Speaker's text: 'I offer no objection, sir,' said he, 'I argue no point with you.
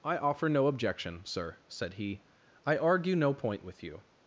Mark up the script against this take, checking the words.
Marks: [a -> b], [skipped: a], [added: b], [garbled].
'I offer no objection, sir,' said he, 'I argue no point with you.